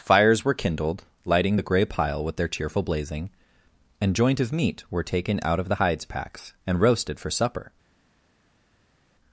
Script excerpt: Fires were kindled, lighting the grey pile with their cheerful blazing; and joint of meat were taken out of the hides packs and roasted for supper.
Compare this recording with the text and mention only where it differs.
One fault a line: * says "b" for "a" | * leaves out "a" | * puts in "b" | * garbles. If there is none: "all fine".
all fine